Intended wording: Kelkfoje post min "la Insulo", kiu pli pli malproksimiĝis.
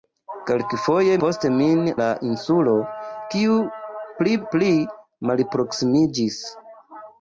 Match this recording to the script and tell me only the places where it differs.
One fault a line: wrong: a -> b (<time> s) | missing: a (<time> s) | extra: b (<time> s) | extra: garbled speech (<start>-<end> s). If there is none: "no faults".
no faults